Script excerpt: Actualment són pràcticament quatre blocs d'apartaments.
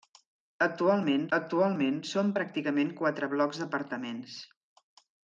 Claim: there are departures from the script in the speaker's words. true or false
true